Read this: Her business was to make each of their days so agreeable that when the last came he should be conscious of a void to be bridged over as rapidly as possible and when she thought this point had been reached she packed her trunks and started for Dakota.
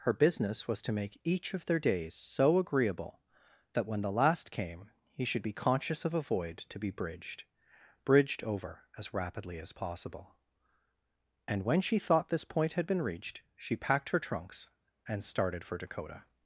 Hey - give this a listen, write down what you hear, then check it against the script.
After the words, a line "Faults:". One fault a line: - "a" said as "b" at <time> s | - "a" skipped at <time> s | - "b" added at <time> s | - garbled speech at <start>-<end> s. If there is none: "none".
Her business was to make each of their days so agreeable that when the last came he should be conscious of a void to be bridged bridged over as rapidly as possible and when she thought this point had been reached she packed her trunks and started for Dakota.
Faults:
- "bridged" added at 8.0 s